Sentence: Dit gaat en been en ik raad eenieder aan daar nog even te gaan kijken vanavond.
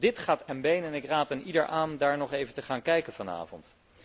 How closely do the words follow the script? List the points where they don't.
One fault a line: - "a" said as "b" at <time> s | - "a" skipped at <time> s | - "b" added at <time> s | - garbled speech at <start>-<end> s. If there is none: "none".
none